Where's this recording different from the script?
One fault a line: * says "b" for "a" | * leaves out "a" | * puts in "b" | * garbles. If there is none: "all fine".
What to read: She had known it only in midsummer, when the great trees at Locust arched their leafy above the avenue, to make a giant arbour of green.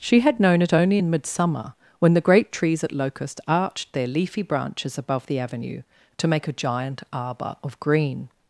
* puts in "branches"